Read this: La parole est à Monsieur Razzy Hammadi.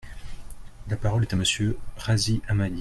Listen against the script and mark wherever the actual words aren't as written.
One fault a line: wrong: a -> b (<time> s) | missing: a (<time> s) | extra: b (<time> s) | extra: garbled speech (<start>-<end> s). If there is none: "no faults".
no faults